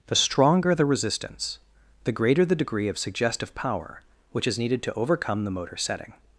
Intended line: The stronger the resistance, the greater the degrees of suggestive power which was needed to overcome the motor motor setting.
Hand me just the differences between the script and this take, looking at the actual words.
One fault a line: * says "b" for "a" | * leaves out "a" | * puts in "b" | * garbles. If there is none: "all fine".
* says "degree" for "degrees"
* says "is" for "was"
* leaves out "motor"